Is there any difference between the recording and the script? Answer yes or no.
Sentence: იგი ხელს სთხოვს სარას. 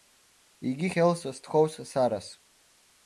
no